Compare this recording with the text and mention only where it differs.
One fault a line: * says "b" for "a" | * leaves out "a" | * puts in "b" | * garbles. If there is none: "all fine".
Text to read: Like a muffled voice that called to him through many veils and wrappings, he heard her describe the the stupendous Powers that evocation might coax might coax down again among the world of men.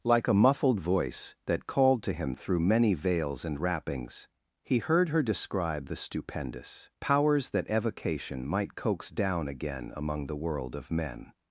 * leaves out "the"
* leaves out "might coax"